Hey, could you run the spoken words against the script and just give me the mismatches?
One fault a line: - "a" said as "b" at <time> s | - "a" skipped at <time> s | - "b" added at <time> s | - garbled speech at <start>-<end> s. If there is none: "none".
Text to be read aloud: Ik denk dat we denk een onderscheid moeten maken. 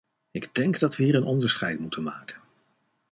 - "denk" said as "hier" at 1.0 s